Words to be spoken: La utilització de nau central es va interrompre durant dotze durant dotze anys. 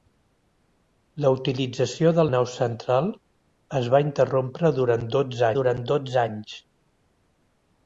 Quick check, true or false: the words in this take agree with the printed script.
true